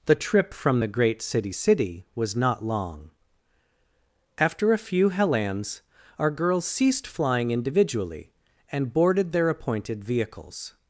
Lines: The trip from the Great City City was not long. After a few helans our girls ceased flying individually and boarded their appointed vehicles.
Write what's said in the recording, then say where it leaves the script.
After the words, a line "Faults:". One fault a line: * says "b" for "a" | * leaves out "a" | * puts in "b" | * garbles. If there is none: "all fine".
The trip from the Great City City was not long. After a few helans our girls ceased flying individually and boarded their appointed vehicles.
Faults:
all fine